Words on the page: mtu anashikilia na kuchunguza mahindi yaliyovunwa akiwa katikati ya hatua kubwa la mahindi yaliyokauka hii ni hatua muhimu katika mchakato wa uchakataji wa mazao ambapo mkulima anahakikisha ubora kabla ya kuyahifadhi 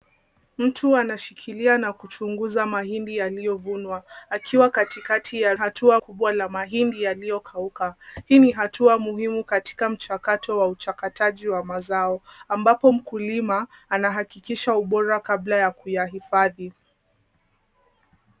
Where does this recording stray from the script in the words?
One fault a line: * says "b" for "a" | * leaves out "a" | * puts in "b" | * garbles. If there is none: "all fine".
all fine